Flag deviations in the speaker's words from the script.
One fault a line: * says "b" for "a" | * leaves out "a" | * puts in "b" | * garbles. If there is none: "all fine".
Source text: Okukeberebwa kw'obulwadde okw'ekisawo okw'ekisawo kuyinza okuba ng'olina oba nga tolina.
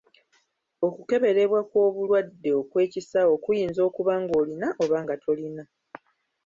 * leaves out "okw'ekisawo"